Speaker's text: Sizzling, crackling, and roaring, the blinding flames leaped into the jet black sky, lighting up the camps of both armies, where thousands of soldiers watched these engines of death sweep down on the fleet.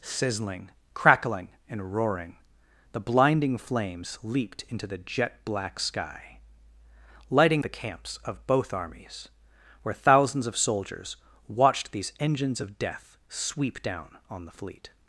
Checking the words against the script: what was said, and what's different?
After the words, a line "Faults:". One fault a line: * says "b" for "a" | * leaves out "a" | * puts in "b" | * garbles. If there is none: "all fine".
Sizzling, crackling, and roaring, the blinding flames leaped into the jet black sky, lighting the camps of both armies, where thousands of soldiers watched these engines of death sweep down on the fleet.
Faults:
* leaves out "up"